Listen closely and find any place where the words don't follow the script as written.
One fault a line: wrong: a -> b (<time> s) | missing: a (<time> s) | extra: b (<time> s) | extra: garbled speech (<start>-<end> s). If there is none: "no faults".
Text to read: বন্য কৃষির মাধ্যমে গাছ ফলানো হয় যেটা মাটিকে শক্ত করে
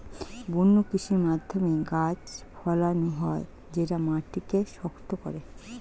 no faults